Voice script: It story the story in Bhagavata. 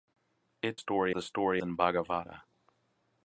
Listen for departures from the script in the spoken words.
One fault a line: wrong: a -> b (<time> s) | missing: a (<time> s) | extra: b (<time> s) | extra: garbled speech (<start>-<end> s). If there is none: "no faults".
no faults